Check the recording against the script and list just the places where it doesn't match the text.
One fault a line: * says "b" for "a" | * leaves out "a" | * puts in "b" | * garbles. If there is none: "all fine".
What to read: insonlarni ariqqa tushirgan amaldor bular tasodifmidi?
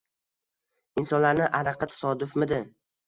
* leaves out "tushirgan amaldor bular"